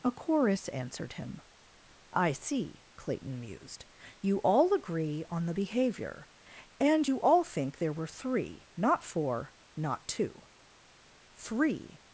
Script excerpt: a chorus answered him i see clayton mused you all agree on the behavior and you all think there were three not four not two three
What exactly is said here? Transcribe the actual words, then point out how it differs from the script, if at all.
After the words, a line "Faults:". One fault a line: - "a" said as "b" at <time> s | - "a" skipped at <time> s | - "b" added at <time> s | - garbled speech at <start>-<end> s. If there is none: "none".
a chorus answered him i see clayton mused you all agree on the behavior and you all think there were three not four not two three
Faults:
none